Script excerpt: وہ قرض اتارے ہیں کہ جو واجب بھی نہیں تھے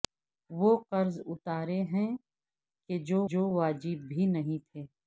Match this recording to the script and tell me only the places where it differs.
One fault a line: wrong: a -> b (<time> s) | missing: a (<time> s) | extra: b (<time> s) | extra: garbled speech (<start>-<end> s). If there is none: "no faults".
extra: جو (3.3 s)